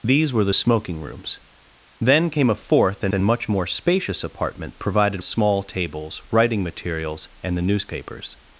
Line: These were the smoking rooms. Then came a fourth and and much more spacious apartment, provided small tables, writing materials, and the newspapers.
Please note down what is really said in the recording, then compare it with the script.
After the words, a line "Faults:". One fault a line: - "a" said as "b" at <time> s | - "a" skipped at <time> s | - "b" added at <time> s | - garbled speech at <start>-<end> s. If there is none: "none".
These were the smoking rooms. Then came a fourth and and much more spacious apartment, provided small tables, writing materials, and the newspapers.
Faults:
none